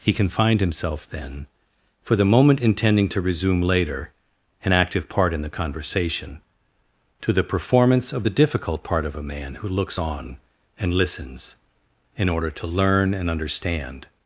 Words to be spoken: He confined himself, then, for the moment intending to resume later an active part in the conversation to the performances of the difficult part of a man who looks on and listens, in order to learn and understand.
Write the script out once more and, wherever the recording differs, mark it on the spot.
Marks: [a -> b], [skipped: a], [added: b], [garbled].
He confined himself, then, for the moment intending to resume later an active part in the conversation to the [performances -> performance] of the difficult part of a man who looks on and listens, in order to learn and understand.